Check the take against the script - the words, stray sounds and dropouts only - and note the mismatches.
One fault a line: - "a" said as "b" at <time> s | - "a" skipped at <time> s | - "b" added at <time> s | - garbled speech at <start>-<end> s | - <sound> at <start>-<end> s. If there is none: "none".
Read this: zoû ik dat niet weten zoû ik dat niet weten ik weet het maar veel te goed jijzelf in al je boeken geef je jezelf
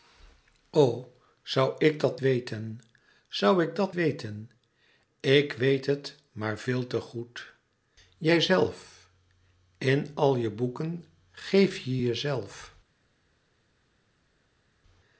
- "niet" skipped at 2.2 s
- "niet" skipped at 3.9 s